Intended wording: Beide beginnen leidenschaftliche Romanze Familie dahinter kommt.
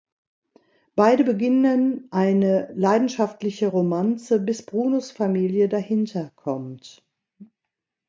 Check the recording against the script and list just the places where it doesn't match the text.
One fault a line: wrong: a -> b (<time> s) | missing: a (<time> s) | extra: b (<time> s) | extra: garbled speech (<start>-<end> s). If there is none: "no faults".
extra: eine (2.1 s)
extra: bis Brunos (4.4 s)